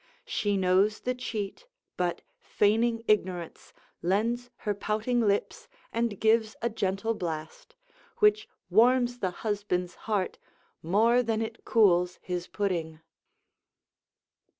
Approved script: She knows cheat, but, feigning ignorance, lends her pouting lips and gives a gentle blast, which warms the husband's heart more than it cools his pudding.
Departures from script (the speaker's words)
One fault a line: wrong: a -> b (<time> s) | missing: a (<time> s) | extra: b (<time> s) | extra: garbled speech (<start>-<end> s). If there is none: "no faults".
extra: the (1.0 s)